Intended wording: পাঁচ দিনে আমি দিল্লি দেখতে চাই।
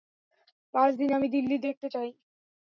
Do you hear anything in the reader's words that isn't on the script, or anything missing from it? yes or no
no